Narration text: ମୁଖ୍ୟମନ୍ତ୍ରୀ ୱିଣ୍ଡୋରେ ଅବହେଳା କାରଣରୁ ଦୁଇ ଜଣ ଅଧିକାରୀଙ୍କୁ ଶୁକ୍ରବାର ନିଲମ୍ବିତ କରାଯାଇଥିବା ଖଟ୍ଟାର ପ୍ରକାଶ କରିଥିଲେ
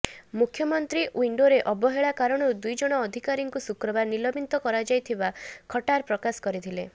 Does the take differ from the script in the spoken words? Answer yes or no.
no